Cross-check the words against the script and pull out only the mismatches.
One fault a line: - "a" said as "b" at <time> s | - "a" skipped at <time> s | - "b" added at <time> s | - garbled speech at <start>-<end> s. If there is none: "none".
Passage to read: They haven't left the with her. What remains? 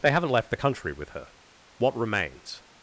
- "country" added at 0.5 s